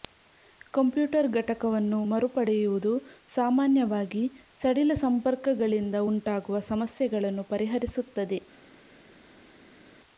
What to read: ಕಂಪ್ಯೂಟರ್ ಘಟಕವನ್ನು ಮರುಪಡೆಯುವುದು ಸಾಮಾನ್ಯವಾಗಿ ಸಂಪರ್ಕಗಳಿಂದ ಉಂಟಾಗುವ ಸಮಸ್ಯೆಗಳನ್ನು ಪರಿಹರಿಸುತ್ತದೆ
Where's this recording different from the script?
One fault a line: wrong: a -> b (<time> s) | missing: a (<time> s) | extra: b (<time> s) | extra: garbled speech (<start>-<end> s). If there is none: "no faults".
extra: ಸಡಿಲ (4.6 s)